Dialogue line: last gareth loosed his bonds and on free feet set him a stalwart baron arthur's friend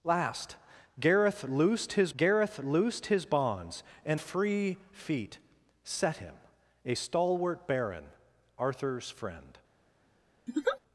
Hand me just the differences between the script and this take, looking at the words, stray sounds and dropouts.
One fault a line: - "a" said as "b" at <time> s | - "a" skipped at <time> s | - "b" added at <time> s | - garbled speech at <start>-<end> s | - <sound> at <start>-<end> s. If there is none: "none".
- "gareth loosed his" added at 2.2 s
- "on" skipped at 4.2 s
- laugh at 10.5-10.8 s